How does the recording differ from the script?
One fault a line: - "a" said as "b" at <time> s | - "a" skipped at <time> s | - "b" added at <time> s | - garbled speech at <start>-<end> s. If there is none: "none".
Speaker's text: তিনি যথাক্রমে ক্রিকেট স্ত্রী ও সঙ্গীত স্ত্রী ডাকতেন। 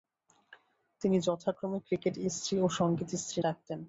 none